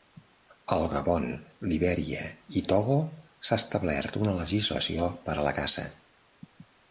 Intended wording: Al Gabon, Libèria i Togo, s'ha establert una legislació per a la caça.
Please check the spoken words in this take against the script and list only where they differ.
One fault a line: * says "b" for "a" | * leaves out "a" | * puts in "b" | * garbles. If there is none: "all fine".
all fine